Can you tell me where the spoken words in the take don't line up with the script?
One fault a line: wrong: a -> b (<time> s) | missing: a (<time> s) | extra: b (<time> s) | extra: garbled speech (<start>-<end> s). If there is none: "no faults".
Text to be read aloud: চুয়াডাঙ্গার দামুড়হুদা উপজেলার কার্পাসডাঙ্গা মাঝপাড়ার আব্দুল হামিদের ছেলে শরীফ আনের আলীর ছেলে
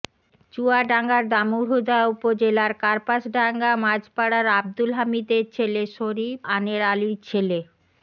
no faults